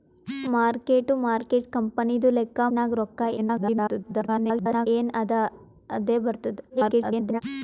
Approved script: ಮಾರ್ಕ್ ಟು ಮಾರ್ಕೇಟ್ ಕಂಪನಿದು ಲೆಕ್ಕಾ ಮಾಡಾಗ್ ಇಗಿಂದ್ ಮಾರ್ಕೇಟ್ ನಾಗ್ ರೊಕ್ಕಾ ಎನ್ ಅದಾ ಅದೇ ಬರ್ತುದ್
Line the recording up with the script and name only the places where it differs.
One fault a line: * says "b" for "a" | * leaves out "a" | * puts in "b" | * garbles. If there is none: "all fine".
* leaves out "ಮಾಡಾಗ್ ಇಗಿಂದ್ ಮಾರ್ಕೇಟ್"
* garbles
* garbles